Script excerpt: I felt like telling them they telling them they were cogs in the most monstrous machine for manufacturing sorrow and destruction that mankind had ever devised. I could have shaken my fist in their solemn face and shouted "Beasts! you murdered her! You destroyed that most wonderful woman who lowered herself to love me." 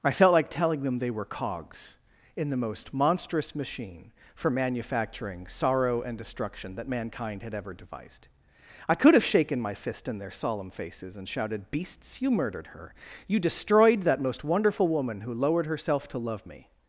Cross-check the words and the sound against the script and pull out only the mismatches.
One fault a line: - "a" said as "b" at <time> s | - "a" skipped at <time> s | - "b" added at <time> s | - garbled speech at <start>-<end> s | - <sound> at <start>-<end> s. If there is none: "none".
- "telling them they" skipped at 1.1 s
- "face" said as "faces" at 10.7 s